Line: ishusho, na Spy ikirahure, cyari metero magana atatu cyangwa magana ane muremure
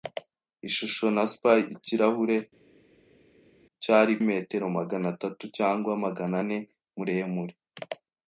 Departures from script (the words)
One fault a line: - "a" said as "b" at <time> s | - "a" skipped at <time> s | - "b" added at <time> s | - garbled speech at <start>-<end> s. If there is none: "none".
none